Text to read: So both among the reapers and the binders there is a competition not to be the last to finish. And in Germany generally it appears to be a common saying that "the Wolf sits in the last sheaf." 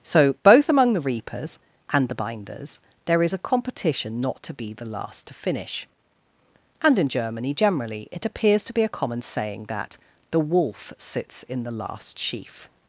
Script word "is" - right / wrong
right